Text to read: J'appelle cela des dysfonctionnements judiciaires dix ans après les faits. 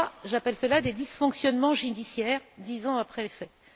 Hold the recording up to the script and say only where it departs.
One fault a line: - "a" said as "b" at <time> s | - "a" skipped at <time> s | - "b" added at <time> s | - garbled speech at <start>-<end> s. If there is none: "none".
none